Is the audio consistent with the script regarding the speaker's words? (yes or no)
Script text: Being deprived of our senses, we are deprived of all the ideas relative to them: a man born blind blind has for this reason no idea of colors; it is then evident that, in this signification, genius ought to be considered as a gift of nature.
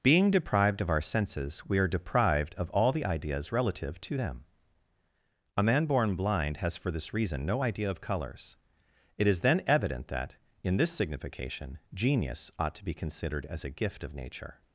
no